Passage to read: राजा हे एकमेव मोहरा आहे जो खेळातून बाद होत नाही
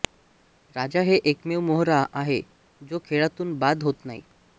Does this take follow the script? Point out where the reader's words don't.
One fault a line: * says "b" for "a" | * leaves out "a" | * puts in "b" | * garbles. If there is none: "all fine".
all fine